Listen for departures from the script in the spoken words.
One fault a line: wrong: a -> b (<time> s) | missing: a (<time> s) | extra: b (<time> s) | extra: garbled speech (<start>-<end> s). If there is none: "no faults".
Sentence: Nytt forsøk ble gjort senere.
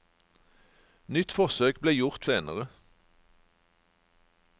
no faults